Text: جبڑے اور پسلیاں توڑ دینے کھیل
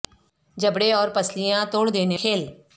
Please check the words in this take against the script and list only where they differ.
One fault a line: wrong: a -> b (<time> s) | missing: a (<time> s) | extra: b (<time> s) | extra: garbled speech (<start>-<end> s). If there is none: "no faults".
no faults